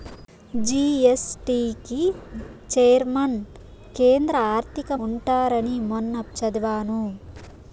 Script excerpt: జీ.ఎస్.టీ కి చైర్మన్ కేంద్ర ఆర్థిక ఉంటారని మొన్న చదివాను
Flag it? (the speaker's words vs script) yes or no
no